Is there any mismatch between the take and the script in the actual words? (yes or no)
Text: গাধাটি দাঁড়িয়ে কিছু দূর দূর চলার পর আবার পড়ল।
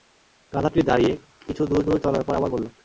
no